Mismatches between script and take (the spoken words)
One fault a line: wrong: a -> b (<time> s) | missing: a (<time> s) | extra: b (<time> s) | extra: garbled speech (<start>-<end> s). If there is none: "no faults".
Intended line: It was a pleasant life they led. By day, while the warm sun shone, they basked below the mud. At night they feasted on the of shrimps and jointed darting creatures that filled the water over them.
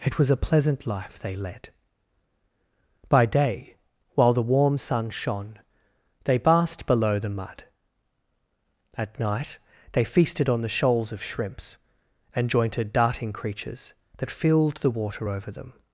extra: shoals (10.7 s)